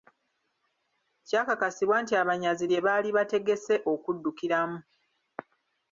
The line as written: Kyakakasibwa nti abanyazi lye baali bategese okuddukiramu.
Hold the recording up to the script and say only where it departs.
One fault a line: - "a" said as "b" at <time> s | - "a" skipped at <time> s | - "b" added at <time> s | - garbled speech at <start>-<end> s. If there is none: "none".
none